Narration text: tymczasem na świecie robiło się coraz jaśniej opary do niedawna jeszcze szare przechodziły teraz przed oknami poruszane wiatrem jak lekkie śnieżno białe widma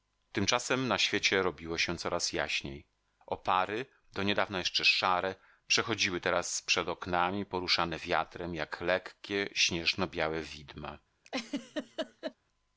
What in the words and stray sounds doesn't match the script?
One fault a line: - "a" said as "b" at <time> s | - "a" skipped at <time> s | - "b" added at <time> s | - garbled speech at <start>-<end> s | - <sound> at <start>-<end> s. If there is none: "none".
- laugh at 11.2-12.3 s